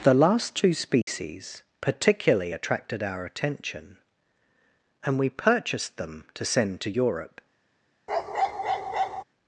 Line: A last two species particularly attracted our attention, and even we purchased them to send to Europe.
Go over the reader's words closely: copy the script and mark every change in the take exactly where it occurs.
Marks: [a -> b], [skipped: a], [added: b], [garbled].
[A -> The] last two species particularly attracted our attention, and [skipped: even] we purchased them to send to Europe.